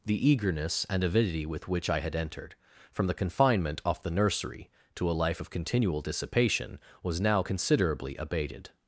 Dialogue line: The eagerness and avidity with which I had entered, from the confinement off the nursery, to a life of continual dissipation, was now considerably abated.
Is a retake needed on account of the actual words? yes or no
no